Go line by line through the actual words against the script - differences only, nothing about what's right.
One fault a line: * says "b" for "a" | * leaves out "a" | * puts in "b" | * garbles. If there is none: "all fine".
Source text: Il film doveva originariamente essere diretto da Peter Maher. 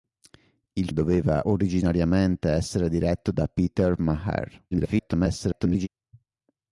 * leaves out "film"
* garbles